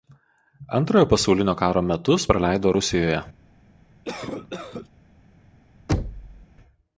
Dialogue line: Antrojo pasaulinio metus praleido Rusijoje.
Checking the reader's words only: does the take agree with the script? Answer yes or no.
no